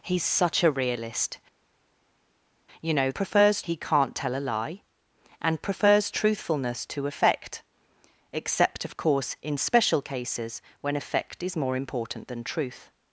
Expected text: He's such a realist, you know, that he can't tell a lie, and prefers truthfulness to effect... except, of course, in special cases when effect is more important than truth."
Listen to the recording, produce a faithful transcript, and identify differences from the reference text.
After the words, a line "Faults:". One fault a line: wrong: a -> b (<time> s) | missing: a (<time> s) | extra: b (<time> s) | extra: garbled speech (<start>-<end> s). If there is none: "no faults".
He's such a realist, you know, prefers he can't tell a lie, and prefers truthfulness to effect... except, of course, in special cases when effect is more important than truth."
Faults:
wrong: that -> prefers (3.1 s)